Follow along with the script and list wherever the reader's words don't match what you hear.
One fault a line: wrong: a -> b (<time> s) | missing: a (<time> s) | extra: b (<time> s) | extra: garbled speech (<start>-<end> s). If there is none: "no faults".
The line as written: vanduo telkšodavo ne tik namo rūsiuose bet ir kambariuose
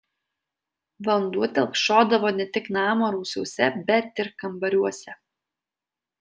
no faults